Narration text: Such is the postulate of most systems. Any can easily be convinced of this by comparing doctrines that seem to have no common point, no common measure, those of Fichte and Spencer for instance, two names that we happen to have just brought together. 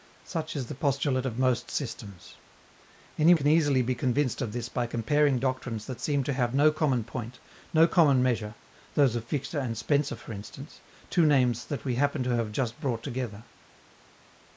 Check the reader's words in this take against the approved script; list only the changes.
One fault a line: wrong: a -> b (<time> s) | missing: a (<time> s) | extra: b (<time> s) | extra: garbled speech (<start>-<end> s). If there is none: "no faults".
no faults